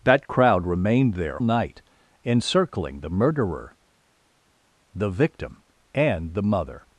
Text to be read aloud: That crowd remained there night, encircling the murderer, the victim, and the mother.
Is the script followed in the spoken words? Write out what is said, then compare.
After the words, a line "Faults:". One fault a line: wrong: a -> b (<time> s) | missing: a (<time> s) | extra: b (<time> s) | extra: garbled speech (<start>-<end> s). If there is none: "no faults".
That crowd remained there night, encircling the murderer, the victim, and the mother.
Faults:
no faults